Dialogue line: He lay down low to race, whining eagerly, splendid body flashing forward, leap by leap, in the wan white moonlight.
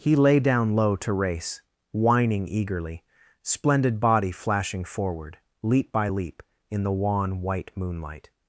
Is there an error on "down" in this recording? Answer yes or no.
no